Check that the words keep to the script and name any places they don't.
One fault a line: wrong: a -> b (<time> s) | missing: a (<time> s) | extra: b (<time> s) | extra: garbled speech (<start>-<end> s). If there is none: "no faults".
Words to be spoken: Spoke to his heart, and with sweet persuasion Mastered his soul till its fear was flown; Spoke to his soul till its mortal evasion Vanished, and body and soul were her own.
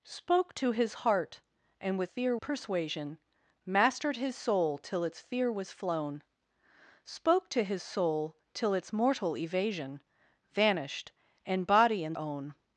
wrong: sweet -> fear (2.1 s)
missing: soul were her (12.2 s)